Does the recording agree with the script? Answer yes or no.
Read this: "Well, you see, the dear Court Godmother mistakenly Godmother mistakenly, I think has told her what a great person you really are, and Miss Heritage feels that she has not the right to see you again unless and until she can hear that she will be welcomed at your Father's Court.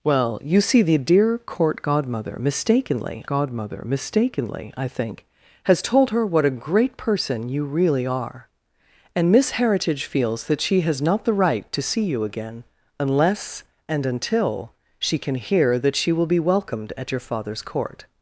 yes